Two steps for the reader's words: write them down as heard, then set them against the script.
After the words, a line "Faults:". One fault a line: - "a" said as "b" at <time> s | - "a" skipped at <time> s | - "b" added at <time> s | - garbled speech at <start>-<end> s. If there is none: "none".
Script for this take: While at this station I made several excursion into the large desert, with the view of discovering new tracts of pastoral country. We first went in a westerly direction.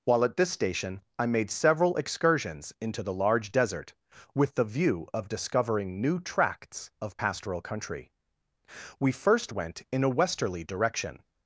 While at this station I made several excursions into the large desert, with the view of discovering new tracts of pastoral country. We first went in a westerly direction.
Faults:
- "excursion" said as "excursions" at 1.9 s